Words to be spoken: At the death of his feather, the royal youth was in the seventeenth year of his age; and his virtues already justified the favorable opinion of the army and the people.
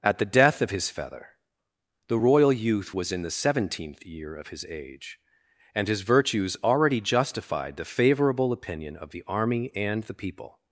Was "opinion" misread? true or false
false